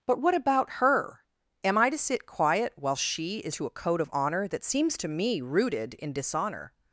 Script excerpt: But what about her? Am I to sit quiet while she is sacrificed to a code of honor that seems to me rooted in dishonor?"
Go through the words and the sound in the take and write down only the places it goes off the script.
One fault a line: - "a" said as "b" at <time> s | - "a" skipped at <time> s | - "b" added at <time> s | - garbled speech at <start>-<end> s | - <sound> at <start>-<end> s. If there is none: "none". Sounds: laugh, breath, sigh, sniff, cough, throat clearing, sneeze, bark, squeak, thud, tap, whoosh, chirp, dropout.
- "sacrificed" skipped at 3.5 s